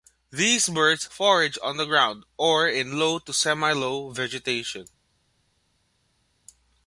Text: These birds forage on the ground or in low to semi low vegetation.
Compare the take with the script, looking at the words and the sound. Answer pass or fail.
pass